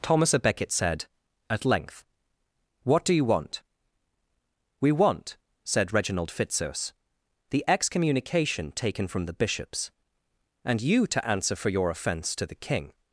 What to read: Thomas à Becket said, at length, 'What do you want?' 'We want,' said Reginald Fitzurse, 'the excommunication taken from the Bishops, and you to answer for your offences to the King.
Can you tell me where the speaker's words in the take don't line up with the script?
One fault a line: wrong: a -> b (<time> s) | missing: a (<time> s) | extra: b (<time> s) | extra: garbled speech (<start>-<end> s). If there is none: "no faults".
wrong: offences -> offence (11.9 s)